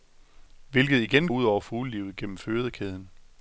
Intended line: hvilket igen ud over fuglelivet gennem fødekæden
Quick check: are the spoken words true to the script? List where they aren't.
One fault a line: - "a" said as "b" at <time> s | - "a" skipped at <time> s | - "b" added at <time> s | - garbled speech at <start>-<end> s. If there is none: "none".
none